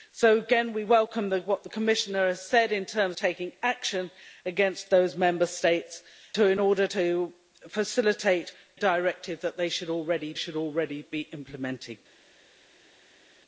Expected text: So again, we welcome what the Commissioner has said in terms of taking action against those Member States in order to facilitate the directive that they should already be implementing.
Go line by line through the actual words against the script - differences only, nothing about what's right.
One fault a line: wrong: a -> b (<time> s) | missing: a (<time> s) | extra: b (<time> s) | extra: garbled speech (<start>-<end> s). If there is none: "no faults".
missing: of (3.2 s)
missing: the (8.5 s)
extra: should already (10.4 s)